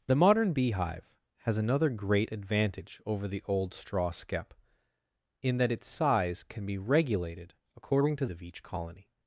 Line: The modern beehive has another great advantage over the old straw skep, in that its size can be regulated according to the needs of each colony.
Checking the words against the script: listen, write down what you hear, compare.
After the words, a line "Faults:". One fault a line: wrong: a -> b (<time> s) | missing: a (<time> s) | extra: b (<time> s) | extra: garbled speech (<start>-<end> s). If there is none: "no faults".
The modern beehive has another great advantage over the old straw skep, in that its size can be regulated according to of each colony.
Faults:
missing: the needs (8.2 s)